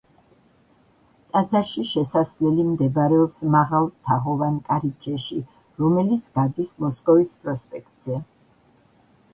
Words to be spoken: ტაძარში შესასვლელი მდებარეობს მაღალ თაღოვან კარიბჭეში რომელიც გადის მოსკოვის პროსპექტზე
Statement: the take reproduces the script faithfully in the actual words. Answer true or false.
true